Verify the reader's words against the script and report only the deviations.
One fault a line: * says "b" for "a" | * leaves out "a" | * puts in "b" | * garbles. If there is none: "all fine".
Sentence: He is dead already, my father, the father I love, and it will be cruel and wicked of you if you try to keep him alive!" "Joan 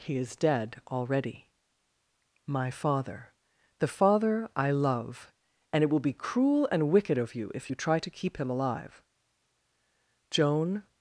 all fine